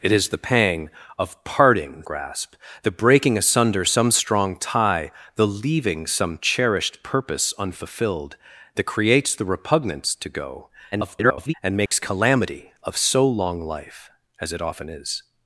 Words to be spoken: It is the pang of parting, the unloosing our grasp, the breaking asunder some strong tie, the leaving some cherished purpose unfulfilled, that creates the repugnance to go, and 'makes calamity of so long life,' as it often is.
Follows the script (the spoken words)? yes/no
no